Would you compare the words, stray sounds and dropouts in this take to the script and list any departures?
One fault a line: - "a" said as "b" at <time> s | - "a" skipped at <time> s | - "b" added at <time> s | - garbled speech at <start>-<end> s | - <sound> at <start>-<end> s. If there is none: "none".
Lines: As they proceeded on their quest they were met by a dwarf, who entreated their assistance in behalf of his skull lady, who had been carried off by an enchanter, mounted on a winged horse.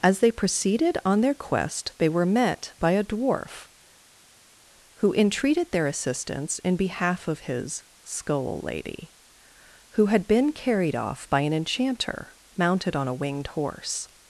none